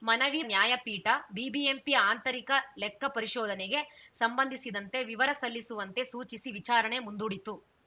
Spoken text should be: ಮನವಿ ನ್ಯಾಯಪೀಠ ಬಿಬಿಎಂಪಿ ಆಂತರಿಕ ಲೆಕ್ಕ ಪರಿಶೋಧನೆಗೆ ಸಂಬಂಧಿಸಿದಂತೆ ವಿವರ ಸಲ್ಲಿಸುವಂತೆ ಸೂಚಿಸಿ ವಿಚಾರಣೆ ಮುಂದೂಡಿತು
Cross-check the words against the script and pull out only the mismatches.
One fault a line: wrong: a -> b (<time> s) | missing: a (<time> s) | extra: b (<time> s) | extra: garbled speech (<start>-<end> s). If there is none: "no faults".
no faults